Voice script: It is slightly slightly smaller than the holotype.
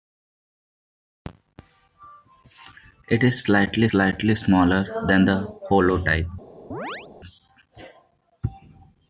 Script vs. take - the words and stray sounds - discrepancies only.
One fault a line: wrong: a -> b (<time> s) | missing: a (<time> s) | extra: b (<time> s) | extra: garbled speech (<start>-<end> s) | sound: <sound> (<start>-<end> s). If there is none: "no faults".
sound: chirp (6.7-7.1 s)